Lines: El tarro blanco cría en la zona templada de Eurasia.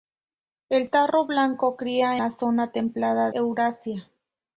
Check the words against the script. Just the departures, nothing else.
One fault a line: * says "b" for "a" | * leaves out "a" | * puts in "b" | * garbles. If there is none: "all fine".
* leaves out "en"
* leaves out "de"